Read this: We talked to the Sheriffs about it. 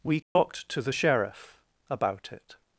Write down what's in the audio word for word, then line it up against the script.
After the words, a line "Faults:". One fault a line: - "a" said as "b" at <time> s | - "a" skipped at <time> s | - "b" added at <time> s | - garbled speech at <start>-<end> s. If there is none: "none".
We talked to the Sheriff about it.
Faults:
- "Sheriffs" said as "Sheriff" at 0.9 s